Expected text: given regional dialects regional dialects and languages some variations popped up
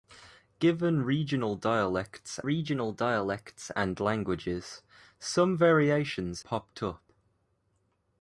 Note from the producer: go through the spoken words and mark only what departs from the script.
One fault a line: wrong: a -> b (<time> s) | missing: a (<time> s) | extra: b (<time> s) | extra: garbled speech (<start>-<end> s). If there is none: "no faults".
no faults